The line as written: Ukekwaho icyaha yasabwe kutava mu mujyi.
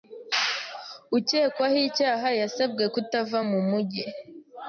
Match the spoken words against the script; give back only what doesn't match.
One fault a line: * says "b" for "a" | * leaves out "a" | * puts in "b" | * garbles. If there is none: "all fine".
all fine